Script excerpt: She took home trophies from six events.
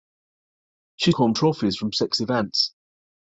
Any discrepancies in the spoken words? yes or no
yes